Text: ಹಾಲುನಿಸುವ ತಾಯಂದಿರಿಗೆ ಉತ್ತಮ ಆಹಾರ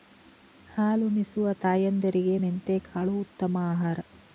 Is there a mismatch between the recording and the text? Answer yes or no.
yes